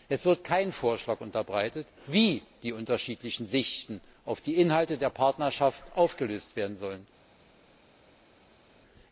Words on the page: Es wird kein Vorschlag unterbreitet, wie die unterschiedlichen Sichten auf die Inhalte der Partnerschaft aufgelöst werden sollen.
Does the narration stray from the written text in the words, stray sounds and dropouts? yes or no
no